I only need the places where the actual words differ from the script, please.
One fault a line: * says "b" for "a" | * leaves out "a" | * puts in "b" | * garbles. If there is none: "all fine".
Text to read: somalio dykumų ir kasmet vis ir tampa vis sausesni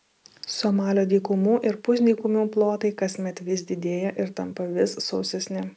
* puts in "pusdykumių plotai"
* puts in "didėja"